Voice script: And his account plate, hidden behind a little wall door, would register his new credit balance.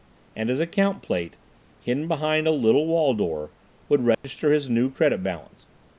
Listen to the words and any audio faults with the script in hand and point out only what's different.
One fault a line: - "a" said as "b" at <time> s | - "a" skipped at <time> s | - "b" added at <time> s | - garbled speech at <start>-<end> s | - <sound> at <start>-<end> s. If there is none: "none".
- dropout at 4.1-4.2 s